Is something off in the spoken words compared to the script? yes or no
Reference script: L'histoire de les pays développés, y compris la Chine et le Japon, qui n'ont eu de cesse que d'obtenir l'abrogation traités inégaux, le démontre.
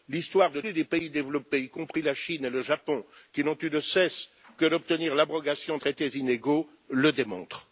no